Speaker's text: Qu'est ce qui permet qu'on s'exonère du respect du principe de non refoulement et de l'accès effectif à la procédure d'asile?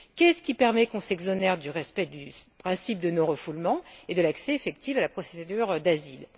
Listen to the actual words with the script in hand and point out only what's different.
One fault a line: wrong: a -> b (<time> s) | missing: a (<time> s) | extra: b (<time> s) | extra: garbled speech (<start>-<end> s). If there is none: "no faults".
no faults